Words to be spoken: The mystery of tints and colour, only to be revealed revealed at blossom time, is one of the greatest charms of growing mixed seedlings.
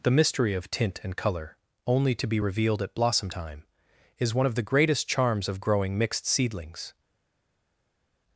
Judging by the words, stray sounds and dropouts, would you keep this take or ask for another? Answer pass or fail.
fail